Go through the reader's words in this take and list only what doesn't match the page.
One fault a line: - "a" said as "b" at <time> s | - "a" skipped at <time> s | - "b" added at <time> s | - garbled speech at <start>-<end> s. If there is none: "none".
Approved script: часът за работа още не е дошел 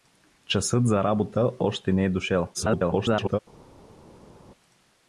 - garbled speech at 2.5-3.4 s